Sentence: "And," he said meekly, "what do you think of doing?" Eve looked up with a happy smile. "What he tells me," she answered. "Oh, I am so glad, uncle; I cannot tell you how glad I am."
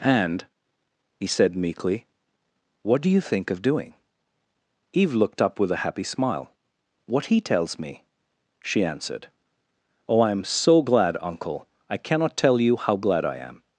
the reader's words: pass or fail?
pass